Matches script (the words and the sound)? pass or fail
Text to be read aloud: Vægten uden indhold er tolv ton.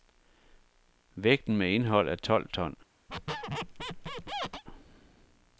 fail